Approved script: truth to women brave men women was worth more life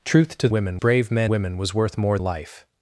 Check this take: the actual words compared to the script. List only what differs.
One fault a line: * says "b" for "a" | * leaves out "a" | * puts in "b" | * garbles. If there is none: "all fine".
all fine